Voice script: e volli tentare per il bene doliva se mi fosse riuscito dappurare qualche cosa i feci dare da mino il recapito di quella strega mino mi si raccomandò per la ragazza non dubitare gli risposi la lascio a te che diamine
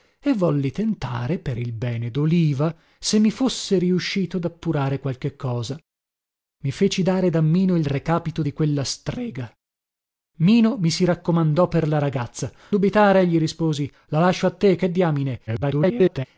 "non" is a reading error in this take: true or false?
true